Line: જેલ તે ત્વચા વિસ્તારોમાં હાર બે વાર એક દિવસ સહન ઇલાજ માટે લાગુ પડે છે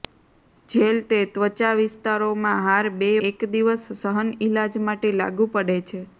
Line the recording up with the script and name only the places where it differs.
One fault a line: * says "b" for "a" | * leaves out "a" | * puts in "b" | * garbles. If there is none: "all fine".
* leaves out "વાર"